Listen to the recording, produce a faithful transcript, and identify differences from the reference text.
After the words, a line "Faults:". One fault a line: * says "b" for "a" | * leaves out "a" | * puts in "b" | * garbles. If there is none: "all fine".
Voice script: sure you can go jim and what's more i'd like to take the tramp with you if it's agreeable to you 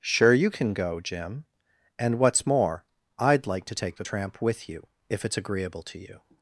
sure you can go jim and what's more i'd like to take the tramp with you if it's agreeable to you
Faults:
all fine